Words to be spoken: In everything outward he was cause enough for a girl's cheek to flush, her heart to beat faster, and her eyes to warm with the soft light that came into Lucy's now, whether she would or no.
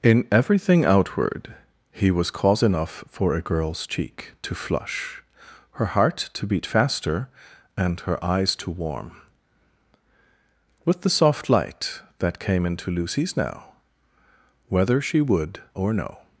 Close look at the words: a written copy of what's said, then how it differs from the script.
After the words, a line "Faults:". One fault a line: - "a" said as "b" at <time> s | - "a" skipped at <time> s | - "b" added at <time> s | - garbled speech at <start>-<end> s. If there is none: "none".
In everything outward he was cause enough for a girl's cheek to flush, her heart to beat faster, and her eyes to warm with the soft light that came into Lucy's now, whether she would or no.
Faults:
none